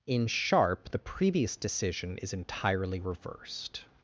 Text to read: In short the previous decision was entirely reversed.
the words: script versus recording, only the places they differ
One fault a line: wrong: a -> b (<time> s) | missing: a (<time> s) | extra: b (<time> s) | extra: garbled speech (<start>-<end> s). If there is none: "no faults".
wrong: short -> sharp (0.3 s)
wrong: was -> is (2.2 s)